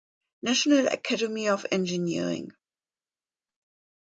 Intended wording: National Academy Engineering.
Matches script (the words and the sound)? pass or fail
fail